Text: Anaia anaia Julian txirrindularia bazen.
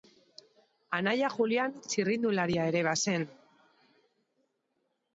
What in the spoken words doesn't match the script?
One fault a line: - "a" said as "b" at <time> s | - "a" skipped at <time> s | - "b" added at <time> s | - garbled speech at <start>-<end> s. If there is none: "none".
- "anaia" skipped at 1.3 s
- "ere" added at 2.7 s